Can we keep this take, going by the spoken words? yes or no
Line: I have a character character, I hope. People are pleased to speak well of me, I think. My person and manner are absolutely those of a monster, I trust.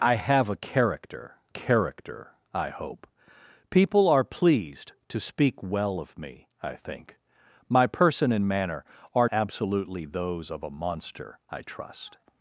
yes